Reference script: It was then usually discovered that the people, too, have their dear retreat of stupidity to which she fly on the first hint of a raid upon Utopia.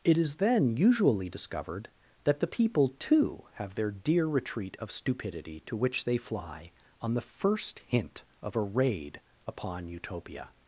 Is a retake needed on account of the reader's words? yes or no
yes